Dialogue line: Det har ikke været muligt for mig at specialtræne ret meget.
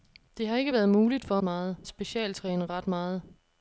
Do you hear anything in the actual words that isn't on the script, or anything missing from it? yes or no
yes